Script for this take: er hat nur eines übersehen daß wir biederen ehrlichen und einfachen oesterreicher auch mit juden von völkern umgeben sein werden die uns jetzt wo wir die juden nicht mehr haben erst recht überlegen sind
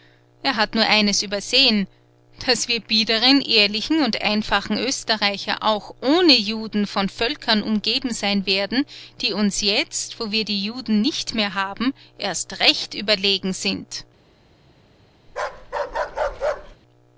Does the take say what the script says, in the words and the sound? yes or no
no